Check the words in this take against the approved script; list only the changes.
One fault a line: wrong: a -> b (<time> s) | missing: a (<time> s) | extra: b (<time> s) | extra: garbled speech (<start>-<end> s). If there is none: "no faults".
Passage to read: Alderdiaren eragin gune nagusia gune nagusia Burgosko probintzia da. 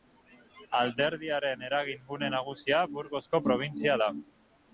missing: gune nagusia (2.8 s)